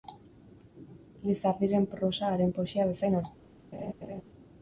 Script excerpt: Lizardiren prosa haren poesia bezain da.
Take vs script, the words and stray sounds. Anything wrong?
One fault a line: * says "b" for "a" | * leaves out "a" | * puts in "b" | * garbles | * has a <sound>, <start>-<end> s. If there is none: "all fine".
* has a laugh, 3.7-4.2 s